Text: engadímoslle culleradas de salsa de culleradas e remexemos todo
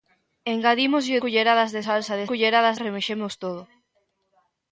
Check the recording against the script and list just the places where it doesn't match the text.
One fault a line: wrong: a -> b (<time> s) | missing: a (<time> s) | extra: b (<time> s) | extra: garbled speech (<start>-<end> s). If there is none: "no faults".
no faults